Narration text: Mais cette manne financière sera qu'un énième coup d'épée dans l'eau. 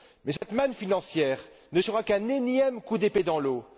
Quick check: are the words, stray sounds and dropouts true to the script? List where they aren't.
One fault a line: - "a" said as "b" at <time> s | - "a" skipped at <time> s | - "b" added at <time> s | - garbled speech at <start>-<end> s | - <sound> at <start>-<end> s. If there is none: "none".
- dropout at 0.4-0.4 s
- "ne" added at 1.7 s